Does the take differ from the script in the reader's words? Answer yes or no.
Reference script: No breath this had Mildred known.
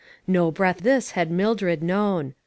no